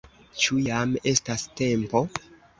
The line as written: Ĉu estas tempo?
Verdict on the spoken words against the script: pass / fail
fail